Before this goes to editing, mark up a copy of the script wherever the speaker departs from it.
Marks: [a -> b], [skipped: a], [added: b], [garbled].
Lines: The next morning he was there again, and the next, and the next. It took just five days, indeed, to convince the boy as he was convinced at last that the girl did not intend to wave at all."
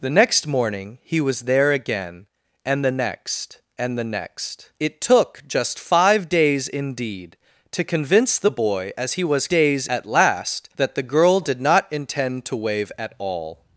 The next morning he was there again, and the next, and the next. It took just five days, indeed, to convince the boy as he was [convinced -> days] at last that the girl did not intend to wave at all."